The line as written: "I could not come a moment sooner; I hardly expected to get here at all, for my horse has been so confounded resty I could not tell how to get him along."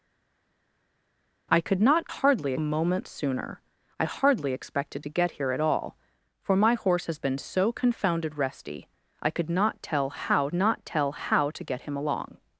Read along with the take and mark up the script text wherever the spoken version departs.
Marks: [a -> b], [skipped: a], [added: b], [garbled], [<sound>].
"I could not [come -> hardly] a moment sooner; I hardly expected to get here at all, for my horse has been so confounded resty I could not tell how [added: not tell how] to get him along."